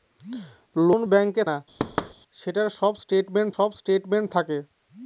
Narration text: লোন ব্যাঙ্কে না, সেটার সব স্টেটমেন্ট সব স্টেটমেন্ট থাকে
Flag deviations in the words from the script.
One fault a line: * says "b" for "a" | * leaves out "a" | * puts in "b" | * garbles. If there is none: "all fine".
all fine